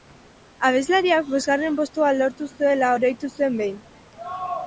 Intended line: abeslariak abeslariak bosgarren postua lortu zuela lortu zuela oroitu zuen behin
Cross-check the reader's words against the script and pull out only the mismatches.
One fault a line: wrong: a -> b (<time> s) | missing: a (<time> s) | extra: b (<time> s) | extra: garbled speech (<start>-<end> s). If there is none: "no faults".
missing: abeslariak (1.3 s)
missing: lortu zuela (2.9 s)